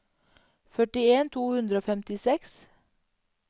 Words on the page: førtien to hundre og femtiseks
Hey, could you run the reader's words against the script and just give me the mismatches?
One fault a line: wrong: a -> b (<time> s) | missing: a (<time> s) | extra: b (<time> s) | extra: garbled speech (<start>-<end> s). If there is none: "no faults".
no faults